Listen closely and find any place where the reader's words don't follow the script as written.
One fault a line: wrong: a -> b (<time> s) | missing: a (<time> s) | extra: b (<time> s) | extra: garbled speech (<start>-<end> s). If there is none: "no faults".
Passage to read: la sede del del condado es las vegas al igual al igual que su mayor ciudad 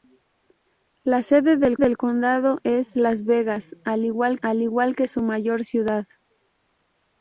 no faults